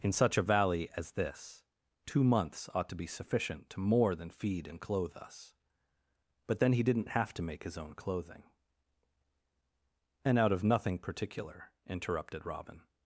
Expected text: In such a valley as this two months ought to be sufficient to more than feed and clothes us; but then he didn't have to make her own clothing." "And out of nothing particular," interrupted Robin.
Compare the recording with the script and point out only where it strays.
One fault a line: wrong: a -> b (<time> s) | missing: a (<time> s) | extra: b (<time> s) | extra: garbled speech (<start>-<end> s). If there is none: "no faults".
wrong: clothes -> clothe (4.8 s)
wrong: her -> his (7.6 s)